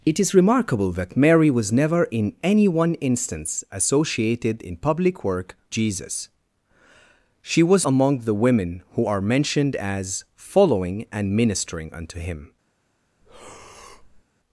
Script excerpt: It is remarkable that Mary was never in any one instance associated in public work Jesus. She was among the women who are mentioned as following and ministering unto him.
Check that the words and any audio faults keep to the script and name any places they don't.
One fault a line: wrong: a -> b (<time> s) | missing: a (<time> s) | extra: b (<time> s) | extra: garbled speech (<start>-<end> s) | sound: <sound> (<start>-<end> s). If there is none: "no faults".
sound: breath (13.2-14.2 s)